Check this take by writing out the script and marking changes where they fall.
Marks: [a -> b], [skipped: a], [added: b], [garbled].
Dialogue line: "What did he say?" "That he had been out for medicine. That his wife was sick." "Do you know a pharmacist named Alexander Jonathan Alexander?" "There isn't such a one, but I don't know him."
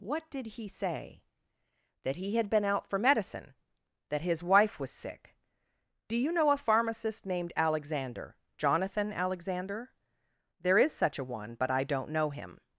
"What did he say?" "That he had been out for medicine. That his wife was sick." "Do you know a pharmacist named Alexander Jonathan Alexander?" "There [isn't -> is] such a one, but I don't know him."